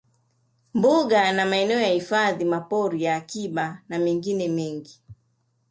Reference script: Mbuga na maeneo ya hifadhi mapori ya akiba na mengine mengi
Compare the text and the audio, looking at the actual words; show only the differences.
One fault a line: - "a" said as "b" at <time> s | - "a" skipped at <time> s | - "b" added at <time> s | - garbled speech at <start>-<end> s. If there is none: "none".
none